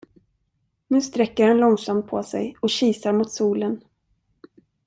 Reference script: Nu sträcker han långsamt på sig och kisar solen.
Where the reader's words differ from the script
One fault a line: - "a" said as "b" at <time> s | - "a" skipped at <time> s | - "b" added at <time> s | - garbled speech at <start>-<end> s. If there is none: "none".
- "mot" added at 3.1 s